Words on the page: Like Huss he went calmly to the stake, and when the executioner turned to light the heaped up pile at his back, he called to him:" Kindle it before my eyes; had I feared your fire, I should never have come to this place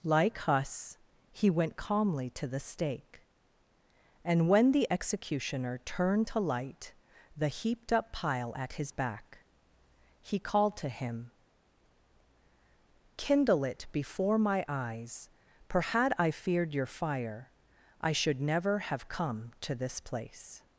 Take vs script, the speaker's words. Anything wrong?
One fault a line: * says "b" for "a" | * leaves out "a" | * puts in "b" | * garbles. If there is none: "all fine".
* puts in "for"